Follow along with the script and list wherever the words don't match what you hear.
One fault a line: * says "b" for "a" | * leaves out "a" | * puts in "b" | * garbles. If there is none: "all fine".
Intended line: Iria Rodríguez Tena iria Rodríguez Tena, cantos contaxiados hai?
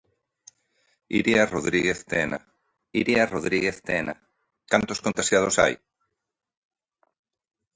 all fine